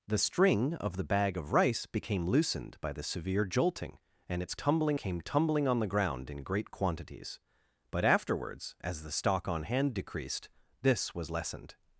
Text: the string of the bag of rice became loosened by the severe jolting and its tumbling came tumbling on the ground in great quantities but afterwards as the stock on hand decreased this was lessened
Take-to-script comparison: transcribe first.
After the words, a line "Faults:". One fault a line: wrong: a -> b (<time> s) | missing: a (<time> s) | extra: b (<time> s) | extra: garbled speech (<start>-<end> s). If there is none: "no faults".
the string of the bag of rice became loosened by the severe jolting and its tumbling came tumbling on the ground in great quantities but afterwards as the stock on hand decreased this was lessened
Faults:
no faults